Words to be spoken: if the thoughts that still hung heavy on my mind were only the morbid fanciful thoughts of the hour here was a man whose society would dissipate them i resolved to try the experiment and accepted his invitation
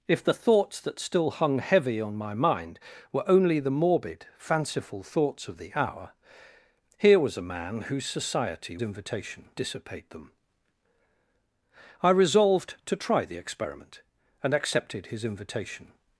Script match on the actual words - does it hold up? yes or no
no